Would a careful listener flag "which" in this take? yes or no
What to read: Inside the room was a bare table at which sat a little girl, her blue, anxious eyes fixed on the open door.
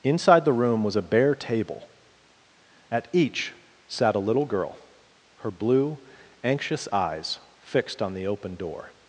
yes